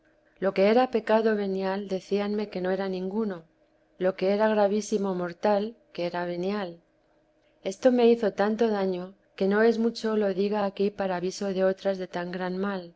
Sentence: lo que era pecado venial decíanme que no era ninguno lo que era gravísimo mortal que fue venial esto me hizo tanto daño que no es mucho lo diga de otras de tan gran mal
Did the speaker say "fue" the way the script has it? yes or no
no